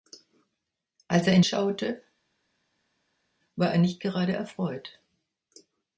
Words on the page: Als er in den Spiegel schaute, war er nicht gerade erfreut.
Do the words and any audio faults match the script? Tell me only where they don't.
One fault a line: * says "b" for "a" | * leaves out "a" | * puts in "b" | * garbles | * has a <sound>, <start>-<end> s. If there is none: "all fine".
* leaves out "den Spiegel"